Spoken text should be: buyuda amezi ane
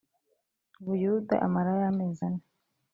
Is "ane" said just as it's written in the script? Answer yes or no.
yes